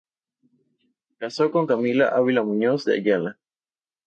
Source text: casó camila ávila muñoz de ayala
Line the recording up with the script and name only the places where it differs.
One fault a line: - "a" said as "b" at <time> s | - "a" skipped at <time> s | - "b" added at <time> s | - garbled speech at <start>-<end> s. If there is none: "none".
- "con" added at 1.5 s